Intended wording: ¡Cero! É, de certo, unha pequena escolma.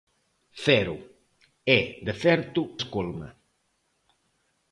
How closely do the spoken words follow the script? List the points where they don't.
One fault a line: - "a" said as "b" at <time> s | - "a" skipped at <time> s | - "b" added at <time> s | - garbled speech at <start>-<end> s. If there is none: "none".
- "unha pequena" skipped at 2.6 s